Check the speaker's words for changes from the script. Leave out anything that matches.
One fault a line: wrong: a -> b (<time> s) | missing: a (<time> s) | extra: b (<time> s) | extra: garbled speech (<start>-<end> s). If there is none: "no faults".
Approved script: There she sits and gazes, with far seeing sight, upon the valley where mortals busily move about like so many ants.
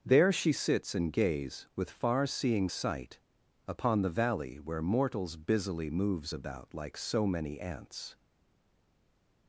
wrong: gazes -> gaze (1.1 s)
wrong: move -> moves (5.9 s)